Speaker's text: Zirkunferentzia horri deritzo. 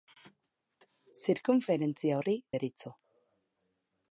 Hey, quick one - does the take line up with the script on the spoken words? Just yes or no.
yes